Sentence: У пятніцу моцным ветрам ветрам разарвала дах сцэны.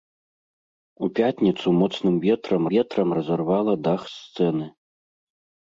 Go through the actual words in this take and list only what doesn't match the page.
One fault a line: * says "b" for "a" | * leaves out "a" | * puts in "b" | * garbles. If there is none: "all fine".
all fine